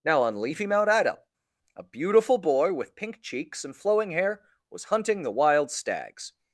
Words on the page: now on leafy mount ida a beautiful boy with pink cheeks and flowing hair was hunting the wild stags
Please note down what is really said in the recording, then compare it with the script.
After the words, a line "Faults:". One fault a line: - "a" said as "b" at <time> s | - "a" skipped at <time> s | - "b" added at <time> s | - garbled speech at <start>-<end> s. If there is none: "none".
now on leafy mount ida a beautiful boy with pink cheeks and flowing hair was hunting the wild stags
Faults:
none